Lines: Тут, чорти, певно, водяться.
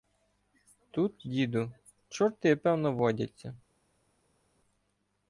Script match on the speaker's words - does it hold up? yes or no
no